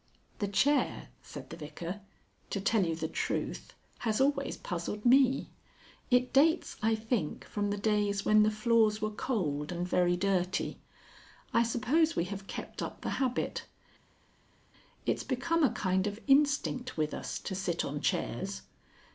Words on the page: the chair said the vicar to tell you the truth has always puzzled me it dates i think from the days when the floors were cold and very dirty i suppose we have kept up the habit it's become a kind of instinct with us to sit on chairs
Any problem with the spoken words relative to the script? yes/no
no